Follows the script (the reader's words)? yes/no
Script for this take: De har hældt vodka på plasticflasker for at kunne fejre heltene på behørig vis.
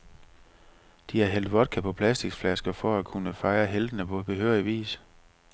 yes